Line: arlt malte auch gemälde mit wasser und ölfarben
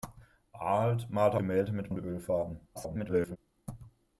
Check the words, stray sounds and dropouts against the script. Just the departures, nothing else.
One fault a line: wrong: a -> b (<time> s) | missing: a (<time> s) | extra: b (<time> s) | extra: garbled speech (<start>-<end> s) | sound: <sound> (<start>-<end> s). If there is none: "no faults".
missing: auch (1.4 s)
missing: wasser (1.9 s)
extra: garbled speech (2.7-3.4 s)